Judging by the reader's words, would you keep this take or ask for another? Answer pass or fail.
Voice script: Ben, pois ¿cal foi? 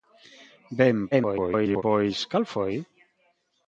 fail